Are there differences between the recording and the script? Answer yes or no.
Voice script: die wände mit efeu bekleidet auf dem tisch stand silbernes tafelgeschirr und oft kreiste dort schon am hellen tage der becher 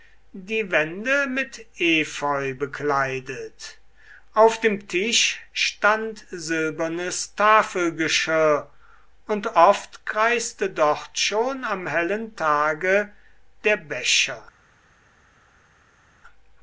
no